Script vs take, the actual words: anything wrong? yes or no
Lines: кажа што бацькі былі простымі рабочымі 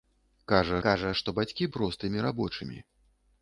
yes